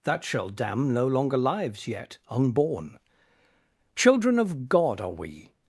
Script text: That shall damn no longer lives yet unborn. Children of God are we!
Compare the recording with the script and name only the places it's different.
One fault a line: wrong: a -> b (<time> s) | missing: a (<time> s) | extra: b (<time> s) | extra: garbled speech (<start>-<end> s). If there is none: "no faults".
no faults